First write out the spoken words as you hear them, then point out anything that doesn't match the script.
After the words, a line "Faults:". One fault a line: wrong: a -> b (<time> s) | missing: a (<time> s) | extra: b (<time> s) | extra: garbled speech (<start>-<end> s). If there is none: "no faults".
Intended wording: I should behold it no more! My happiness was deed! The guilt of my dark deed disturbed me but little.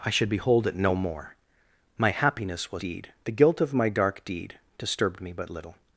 I should behold it no more! My happiness was deed! The guilt of my dark deed disturbed me but little.
Faults:
no faults